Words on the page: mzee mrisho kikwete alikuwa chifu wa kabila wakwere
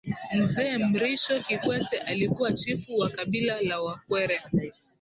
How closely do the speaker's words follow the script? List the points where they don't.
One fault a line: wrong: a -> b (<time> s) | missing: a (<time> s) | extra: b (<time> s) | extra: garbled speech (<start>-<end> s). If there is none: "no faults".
extra: la (3.6 s)